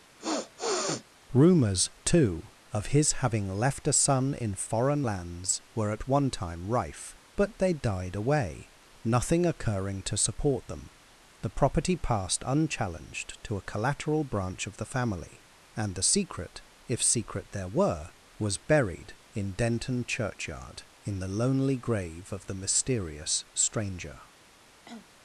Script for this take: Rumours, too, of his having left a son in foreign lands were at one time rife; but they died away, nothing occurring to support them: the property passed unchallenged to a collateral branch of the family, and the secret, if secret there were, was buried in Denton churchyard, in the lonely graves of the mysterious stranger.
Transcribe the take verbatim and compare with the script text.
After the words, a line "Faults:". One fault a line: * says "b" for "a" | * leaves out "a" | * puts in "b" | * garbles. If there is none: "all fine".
Rumours, too, of his having left a son in foreign lands were at one time rife; but they died away, nothing occurring to support them: the property passed unchallenged to a collateral branch of the family, and the secret, if secret there were, was buried in Denton churchyard, in the lonely grave of the mysterious stranger.
Faults:
* says "grave" for "graves"